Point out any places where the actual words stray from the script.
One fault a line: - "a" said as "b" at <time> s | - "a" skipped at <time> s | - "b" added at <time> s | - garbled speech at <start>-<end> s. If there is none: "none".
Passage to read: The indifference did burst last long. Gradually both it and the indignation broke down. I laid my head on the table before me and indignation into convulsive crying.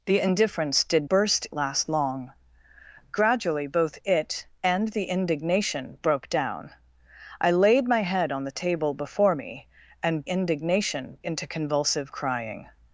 none